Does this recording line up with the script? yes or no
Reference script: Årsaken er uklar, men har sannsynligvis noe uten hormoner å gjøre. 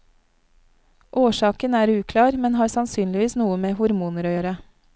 no